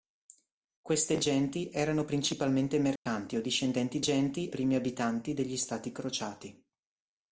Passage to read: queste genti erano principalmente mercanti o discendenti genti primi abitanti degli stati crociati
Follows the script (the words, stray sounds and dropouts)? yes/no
no